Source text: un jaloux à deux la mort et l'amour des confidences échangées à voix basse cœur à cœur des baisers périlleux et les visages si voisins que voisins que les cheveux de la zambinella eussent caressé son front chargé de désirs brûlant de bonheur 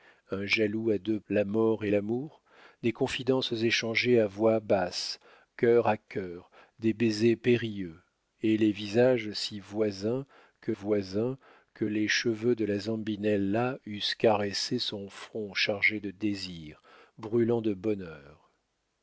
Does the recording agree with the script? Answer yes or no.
yes